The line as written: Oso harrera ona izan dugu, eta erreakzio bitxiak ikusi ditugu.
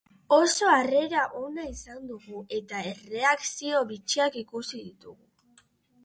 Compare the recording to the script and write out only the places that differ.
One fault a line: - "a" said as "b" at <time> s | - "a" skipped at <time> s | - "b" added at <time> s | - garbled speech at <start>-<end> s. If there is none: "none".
none